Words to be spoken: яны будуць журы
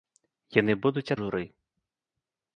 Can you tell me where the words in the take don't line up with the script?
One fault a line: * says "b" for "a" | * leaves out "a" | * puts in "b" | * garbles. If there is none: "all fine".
all fine